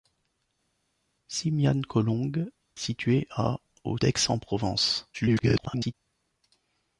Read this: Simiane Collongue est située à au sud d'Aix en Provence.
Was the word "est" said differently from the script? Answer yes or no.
yes